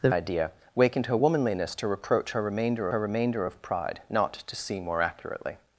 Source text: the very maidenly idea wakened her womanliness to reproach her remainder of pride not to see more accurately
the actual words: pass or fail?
fail